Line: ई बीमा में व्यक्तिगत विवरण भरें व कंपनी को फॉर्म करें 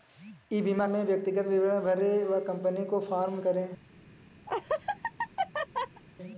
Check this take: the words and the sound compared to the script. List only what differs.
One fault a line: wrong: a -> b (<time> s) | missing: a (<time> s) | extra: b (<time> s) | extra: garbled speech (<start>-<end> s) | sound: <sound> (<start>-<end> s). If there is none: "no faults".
sound: laugh (4.5-6.0 s)